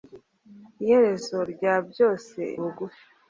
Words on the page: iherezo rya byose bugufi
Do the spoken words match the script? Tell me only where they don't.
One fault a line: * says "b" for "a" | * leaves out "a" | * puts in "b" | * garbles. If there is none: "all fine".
all fine